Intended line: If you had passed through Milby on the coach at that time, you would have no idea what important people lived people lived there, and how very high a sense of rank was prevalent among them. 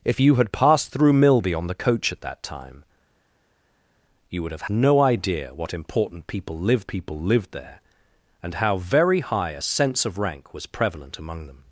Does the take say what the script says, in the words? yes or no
yes